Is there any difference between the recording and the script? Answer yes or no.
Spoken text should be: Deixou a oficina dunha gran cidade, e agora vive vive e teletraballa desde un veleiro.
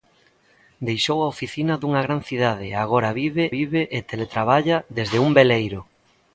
no